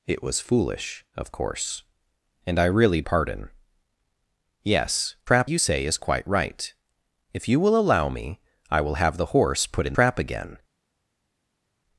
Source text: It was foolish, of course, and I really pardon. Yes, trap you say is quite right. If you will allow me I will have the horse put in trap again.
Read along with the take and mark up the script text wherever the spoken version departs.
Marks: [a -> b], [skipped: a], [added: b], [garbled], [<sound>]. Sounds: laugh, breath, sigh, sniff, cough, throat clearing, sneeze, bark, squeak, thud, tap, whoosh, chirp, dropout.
It was foolish, of course, and I really pardon. Yes, trap you say is quite right. If you will allow me I will have the horse put in trap again.